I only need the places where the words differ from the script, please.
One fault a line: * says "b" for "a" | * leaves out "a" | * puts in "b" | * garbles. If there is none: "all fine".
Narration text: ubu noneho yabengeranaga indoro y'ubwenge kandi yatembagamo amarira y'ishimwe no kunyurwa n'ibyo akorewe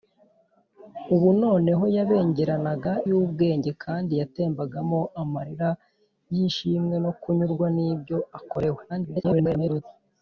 * leaves out "indoro"
* garbles